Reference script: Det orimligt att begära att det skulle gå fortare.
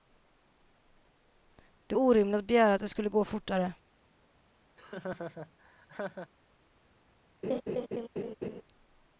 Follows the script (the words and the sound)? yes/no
no